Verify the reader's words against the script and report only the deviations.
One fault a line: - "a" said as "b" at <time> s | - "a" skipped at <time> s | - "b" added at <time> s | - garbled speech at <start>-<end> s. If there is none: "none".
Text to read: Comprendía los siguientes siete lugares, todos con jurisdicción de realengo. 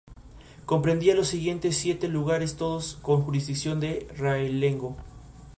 none